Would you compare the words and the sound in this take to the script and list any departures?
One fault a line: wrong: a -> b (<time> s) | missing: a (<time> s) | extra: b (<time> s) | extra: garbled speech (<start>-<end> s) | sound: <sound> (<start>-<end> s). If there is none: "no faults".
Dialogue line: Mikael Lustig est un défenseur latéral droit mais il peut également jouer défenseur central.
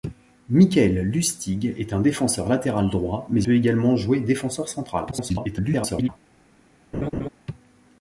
missing: il (3.4 s)
extra: garbled speech (5.1-6.1 s)
sound: laugh (6.9-7.3 s)